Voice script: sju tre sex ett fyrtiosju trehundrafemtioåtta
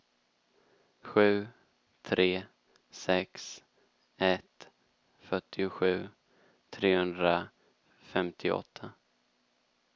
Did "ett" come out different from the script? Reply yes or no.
no